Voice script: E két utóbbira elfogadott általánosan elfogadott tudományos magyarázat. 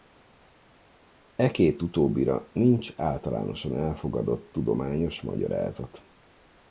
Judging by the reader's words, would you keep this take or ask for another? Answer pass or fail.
fail